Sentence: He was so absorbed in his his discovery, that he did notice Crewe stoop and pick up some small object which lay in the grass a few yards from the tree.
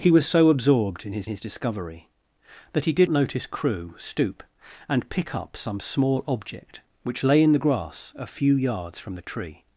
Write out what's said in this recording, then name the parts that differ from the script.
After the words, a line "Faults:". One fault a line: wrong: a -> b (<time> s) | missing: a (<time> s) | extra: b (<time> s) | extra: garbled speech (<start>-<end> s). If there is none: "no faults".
He was so absorbed in his his discovery, that he did notice Crewe stoop and pick up some small object which lay in the grass a few yards from the tree.
Faults:
no faults